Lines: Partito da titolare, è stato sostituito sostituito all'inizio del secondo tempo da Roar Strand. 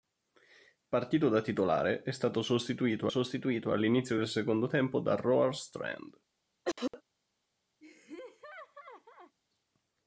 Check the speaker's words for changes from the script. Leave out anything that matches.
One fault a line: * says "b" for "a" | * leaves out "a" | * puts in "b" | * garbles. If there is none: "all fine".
all fine